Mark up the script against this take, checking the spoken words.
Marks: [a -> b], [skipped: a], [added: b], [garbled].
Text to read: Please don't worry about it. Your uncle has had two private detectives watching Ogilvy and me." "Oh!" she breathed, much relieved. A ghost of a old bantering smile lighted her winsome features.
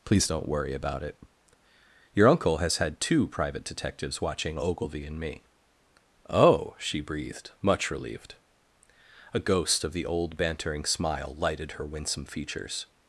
Please don't worry about it. Your uncle has had two private detectives watching Ogilvy and me." "Oh!" she breathed, much relieved. A ghost of [a -> the] old bantering smile lighted her winsome features.